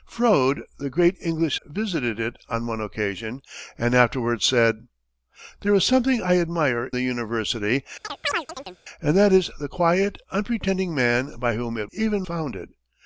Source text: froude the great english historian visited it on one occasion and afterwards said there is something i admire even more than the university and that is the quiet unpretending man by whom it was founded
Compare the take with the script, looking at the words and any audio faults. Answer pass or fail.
fail